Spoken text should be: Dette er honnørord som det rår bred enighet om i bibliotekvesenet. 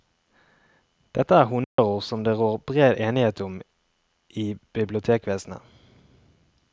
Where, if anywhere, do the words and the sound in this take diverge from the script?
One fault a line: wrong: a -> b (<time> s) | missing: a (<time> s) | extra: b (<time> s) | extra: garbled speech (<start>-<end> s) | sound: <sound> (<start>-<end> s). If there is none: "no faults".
sound: dropout (1.6-1.8 s)